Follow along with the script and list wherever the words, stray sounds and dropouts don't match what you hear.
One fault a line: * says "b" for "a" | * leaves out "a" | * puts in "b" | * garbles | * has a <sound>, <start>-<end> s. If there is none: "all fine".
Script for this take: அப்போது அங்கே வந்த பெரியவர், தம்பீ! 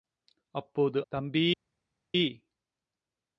* leaves out "அங்கே வந்த பெரியவர்"